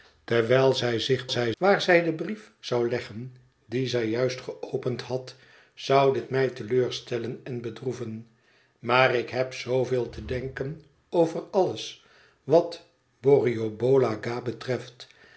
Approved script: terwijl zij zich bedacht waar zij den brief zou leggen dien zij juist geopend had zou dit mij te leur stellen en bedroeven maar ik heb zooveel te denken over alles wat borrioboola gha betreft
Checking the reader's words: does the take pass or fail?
fail